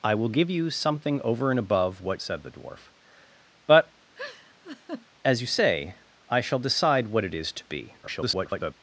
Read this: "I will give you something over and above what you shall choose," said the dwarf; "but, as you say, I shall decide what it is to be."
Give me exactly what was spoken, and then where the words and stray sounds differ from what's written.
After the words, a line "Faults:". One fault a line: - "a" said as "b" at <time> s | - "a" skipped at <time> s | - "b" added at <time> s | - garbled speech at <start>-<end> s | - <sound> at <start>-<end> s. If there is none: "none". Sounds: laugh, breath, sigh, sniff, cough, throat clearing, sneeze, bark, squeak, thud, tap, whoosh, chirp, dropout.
"I will give you something over and above what," said the dwarf; "but, as you say, I shall decide what it is to be." [garbled]
Faults:
- "you shall choose" skipped at 2.2 s
- laugh at 4.2-5.1 s
- garbled speech at 8.0-8.7 s